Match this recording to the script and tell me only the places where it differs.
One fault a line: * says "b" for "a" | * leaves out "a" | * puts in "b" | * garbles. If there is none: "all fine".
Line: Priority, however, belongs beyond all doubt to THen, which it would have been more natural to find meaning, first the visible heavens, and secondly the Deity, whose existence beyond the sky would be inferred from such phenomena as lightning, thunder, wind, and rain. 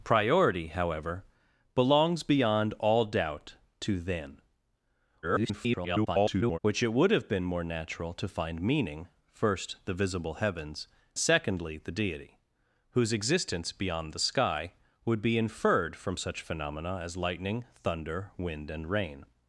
* garbles
* leaves out "and"